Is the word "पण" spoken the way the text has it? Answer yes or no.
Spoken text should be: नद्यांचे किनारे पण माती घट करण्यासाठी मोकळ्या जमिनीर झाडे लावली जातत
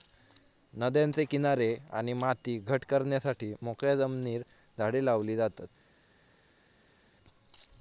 no